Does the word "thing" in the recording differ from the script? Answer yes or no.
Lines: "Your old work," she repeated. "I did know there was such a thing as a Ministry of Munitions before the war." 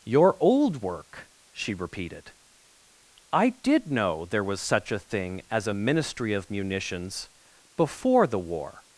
no